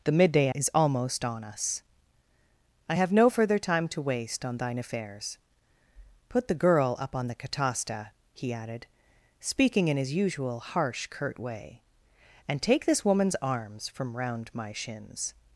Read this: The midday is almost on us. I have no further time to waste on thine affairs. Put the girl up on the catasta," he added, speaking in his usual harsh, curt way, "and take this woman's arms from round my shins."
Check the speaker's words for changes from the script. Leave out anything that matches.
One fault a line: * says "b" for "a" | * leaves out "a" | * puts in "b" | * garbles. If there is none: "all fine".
all fine